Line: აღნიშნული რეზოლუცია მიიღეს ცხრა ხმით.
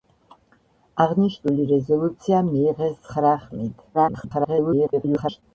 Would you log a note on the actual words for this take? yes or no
yes